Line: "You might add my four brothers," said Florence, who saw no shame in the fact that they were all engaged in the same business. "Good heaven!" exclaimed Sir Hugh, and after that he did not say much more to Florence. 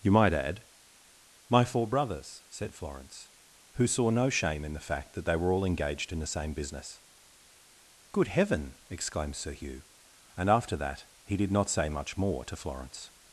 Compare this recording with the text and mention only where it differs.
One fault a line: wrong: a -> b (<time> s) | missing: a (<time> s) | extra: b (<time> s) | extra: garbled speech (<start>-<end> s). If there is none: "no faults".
no faults